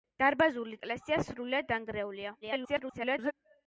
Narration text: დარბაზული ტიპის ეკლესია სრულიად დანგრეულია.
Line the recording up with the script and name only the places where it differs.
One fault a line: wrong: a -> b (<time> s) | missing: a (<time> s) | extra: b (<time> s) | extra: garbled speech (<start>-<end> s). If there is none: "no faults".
missing: ტიპის (0.8 s)
extra: garbled speech (2.4-3.3 s)